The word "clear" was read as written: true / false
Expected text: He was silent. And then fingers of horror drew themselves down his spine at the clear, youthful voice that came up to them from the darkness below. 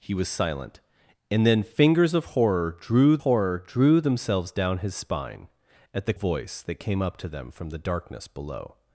false